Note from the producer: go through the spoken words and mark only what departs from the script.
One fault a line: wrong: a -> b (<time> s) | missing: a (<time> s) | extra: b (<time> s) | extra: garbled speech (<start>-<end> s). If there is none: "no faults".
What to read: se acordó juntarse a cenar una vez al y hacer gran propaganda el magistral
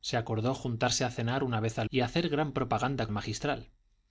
no faults